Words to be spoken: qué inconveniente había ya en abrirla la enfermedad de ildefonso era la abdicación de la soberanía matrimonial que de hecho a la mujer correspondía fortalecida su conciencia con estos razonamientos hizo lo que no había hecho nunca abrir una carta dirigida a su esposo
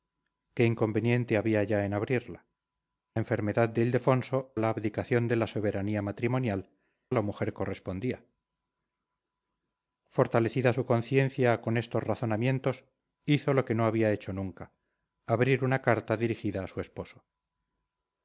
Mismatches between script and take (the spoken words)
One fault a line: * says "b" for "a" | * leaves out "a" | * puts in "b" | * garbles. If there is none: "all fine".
* leaves out "la"
* leaves out "era"
* leaves out "que de hecho"